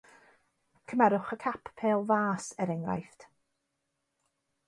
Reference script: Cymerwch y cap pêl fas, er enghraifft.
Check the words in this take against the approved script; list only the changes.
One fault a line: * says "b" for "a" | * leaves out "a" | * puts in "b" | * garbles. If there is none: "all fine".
all fine